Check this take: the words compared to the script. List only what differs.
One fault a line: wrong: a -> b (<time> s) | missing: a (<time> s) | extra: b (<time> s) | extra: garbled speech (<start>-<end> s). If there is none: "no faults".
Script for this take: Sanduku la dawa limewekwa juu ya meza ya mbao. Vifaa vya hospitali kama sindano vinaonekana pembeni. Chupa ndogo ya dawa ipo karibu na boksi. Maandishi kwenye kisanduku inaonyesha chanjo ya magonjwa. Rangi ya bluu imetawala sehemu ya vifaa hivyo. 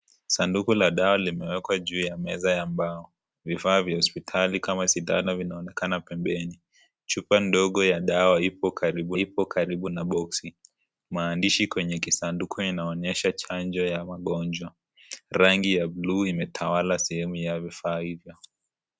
extra: ipo karibu (9.2 s)